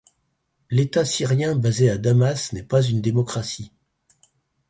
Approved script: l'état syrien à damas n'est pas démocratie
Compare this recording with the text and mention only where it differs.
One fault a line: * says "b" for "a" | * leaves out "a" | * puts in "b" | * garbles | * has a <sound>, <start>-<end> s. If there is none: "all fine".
* puts in "basé"
* puts in "une"